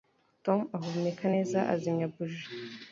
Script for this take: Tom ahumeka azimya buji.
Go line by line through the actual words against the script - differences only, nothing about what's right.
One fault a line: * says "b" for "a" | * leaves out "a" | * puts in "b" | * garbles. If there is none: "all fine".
* puts in "neza"